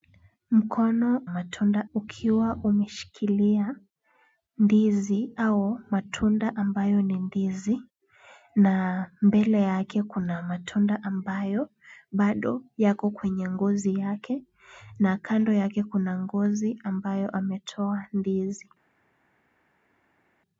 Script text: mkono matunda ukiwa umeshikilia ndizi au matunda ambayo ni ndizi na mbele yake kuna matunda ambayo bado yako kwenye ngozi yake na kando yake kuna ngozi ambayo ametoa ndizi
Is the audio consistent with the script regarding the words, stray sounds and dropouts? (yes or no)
yes